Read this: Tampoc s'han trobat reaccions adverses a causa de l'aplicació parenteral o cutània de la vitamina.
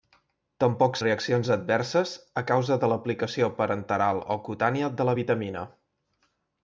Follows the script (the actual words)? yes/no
no